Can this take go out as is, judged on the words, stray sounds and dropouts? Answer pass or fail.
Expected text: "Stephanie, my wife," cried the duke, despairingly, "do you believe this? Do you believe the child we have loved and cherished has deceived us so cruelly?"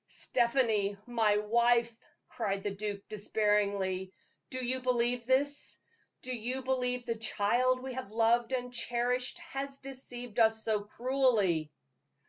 pass